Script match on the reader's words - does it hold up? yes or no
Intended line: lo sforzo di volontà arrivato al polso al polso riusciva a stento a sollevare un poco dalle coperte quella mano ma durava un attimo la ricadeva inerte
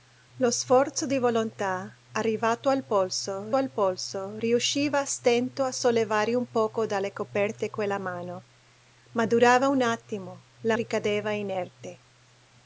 yes